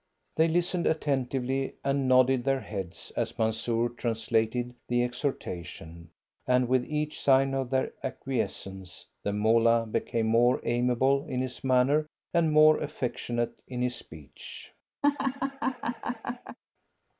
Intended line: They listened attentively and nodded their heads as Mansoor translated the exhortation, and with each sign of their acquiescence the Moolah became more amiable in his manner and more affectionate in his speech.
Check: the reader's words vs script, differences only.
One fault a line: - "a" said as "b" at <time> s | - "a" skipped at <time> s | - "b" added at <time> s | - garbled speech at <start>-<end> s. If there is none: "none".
none